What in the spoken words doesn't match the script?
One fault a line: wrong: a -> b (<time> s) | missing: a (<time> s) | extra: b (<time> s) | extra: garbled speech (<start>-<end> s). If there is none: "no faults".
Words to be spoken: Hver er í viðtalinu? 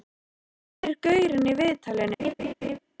extra: gaurinn (1.1 s)